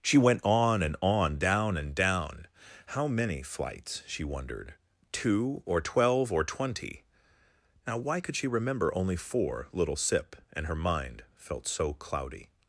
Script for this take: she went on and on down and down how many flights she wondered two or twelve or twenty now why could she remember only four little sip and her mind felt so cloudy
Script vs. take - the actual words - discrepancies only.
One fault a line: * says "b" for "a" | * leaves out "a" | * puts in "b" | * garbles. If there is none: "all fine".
all fine